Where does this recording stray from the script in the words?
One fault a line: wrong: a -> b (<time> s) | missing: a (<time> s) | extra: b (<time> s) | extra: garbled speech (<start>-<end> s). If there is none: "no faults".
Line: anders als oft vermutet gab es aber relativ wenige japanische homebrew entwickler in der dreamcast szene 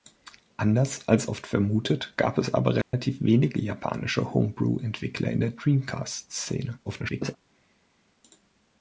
extra: garbled speech (6.9-7.4 s)